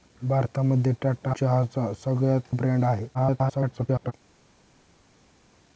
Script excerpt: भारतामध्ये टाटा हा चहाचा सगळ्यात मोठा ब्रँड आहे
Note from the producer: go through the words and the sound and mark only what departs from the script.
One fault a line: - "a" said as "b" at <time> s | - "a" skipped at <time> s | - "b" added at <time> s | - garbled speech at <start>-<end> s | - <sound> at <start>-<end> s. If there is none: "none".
- "हा" skipped at 1.3 s
- "मोठा" skipped at 2.6 s
- garbled speech at 3.1-4.1 s